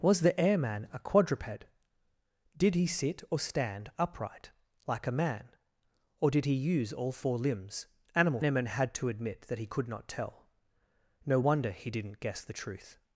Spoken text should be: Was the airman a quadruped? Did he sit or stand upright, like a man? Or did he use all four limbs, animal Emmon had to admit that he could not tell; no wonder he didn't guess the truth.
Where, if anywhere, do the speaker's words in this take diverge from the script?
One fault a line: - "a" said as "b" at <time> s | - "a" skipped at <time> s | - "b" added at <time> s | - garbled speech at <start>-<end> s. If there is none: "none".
none